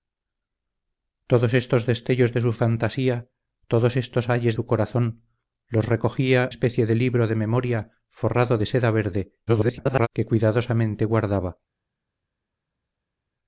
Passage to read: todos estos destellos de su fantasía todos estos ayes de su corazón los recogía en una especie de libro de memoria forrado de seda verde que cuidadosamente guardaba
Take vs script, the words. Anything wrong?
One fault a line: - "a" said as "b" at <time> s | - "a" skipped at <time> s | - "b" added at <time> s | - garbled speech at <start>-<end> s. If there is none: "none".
- "de" skipped at 4.5 s
- "en una" skipped at 6.5 s
- garbled speech at 9.5-10.1 s